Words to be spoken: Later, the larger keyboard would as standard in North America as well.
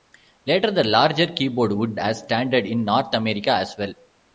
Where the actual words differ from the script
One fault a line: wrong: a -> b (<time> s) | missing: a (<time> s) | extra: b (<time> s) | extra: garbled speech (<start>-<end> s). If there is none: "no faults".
no faults